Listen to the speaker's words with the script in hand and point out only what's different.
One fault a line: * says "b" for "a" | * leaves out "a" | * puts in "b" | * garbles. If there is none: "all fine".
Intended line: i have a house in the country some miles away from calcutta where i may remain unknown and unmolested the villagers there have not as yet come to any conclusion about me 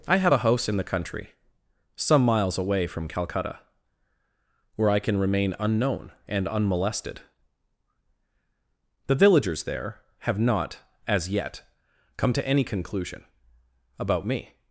* says "can" for "may"